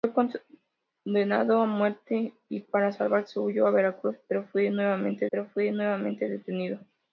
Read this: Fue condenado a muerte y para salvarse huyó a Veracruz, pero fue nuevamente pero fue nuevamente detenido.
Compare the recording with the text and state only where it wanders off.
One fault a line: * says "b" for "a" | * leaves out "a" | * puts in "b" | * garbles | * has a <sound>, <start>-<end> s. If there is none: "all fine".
all fine